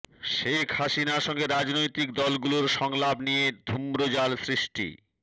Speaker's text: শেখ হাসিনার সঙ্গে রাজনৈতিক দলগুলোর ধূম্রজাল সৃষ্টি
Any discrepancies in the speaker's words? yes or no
yes